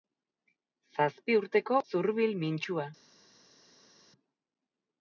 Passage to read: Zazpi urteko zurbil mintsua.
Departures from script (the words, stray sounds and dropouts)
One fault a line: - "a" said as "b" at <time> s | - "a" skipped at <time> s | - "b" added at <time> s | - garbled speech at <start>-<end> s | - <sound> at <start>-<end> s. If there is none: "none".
none